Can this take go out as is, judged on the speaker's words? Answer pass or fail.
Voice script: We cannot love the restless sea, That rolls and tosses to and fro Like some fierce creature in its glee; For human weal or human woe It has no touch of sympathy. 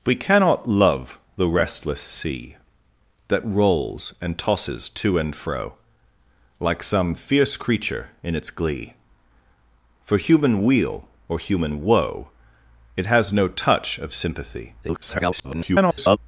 fail